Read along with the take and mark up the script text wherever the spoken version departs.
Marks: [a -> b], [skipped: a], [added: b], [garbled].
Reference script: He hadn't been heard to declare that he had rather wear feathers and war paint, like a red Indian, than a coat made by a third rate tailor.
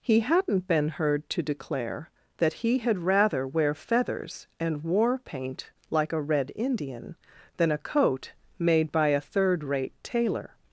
He hadn't been heard to declare that he had rather wear feathers and war paint, like a red Indian, than a coat made by a third rate tailor.